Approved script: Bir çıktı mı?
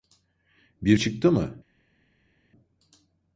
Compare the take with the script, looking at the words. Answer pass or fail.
pass